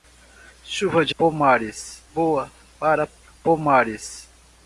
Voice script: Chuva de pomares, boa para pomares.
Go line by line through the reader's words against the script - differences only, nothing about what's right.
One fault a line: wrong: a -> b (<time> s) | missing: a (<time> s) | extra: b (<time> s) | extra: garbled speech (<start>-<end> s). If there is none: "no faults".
no faults